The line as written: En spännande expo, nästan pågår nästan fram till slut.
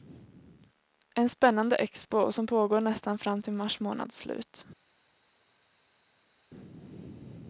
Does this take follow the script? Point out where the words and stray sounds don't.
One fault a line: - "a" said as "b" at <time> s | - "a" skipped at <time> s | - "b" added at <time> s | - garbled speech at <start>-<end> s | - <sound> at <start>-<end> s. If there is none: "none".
- "nästan" said as "som" at 2.3 s
- "mars månads" added at 3.5 s